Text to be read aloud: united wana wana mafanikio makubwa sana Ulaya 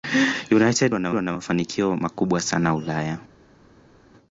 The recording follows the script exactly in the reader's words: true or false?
true